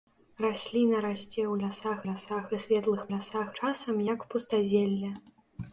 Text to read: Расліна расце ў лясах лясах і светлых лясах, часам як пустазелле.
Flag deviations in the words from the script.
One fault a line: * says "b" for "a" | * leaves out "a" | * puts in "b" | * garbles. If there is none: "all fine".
all fine